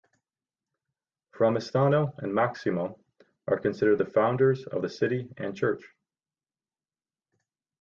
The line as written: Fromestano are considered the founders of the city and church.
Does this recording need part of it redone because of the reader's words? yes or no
yes